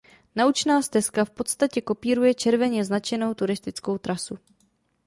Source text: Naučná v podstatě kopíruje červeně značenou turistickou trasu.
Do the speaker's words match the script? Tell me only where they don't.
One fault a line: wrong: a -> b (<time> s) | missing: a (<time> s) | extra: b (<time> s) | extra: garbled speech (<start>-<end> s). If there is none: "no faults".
extra: stezka (0.8 s)